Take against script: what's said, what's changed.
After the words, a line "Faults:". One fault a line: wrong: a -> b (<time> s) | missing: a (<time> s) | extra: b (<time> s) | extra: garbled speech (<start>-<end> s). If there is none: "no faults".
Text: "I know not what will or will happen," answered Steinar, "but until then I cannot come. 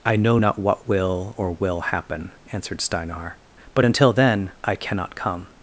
"I know not what will or will happen," answered Steinar, "but until then I cannot come.
Faults:
no faults